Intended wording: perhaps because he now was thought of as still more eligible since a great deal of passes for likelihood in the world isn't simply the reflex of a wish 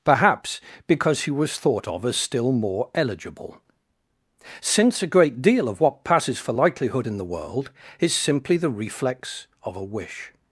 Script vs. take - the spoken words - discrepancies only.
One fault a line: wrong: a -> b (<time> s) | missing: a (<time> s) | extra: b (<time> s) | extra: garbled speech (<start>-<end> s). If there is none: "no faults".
missing: now (1.3 s)
extra: what (5.8 s)
wrong: isn't -> is (8.0 s)